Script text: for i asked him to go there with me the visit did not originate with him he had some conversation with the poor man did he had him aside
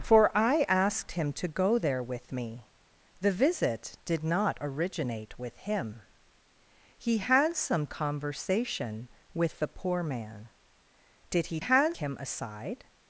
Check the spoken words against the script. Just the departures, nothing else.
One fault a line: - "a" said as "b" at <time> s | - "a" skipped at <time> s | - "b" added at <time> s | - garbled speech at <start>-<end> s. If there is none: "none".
none